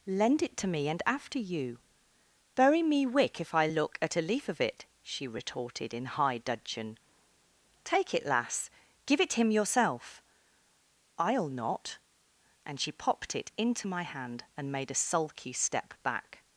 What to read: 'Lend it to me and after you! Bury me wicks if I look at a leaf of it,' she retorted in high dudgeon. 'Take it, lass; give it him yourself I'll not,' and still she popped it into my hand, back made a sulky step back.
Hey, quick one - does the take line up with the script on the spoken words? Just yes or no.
no